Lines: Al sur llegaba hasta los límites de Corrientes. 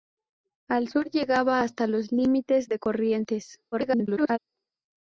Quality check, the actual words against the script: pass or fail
fail